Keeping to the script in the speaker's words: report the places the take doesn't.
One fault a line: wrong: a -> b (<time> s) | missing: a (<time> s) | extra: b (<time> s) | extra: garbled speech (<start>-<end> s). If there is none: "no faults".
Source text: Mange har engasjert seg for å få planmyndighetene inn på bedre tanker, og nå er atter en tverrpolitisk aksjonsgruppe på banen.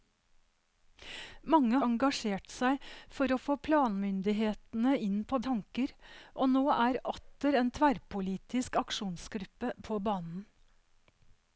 missing: har (1.8 s)
missing: bedre (5.4 s)